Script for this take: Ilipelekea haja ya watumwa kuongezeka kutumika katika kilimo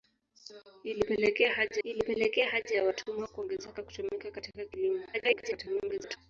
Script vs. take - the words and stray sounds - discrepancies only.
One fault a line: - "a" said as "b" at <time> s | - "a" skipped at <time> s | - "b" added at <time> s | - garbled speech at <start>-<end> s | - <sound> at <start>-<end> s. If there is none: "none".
- "ilipelekea haja" added at 1.8 s
- garbled speech at 5.1-6.2 s